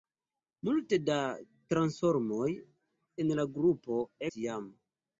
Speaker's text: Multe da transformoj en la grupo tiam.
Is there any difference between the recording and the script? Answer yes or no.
no